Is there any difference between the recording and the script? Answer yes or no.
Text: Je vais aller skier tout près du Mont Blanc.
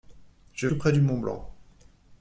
yes